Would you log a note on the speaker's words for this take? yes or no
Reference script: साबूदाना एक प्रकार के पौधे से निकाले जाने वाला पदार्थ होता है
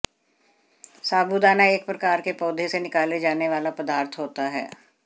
no